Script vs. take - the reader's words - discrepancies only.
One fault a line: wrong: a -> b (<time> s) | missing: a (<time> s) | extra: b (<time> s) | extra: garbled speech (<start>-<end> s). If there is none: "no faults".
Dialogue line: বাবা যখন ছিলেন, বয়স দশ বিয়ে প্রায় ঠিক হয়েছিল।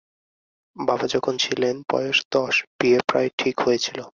no faults